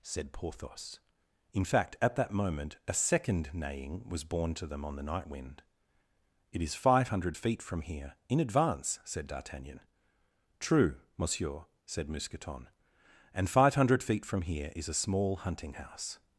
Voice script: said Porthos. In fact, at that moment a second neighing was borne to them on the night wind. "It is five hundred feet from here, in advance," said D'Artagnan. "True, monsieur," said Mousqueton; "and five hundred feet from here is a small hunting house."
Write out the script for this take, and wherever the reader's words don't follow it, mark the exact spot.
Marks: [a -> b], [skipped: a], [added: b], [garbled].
said Porthos. In fact, at that moment a second neighing was borne to them on the night wind. "It is five hundred feet from here, in advance," said D'Artagnan. "True, monsieur," said Mousqueton; "and five hundred feet from here is a small hunting house."